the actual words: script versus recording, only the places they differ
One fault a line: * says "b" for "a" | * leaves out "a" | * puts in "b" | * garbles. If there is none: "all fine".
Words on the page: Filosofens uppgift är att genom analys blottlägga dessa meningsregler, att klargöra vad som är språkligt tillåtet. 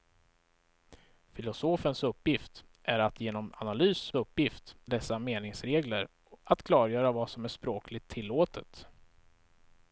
* says "uppgift" for "blottlägga"